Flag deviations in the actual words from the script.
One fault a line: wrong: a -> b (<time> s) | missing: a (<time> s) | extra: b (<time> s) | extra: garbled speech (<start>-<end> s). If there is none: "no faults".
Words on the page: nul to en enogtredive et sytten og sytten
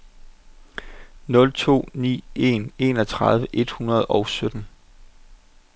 extra: ni (1.9 s)
wrong: sytten -> hundrede (3.7 s)